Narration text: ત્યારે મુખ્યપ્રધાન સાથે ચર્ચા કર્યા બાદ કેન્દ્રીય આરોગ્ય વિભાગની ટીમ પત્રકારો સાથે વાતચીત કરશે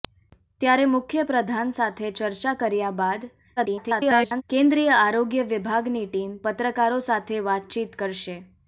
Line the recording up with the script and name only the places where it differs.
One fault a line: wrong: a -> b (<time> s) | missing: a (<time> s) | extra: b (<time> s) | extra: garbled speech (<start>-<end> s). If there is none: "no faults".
extra: garbled speech (3.6-4.4 s)